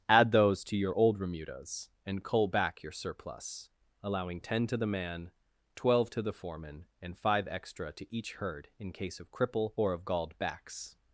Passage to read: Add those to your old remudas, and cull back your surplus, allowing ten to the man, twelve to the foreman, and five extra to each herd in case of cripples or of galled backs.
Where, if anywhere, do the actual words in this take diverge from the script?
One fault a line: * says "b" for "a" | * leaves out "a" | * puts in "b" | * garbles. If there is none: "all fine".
* says "cripple" for "cripples"